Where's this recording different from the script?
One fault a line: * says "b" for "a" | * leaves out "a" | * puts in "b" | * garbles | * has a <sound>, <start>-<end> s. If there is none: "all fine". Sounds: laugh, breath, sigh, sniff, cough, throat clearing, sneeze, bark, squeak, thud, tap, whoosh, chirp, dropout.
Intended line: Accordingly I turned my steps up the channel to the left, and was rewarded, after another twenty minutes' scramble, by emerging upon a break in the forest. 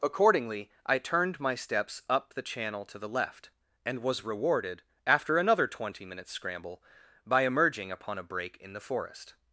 all fine